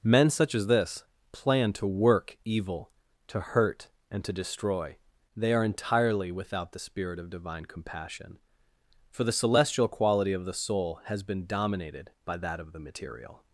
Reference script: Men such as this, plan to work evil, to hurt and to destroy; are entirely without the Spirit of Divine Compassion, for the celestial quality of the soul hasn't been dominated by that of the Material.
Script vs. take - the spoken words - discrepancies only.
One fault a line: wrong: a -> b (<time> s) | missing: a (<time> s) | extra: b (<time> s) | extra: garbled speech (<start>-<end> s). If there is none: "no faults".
extra: they (5.4 s)
wrong: hasn't -> has (11.1 s)